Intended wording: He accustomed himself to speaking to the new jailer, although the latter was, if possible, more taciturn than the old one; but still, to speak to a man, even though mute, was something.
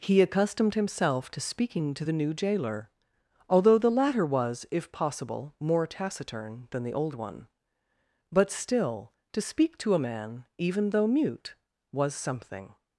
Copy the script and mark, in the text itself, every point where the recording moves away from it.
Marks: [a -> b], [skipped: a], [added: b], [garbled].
He accustomed himself to speaking to the new jailer, although the latter was, if possible, more taciturn than the old one; but still, to speak to a man, even though mute, was something.